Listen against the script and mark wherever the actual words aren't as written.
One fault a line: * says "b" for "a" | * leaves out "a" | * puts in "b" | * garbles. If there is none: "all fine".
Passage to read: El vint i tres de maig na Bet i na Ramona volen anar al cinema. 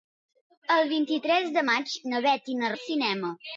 * leaves out "Ramona volen anar"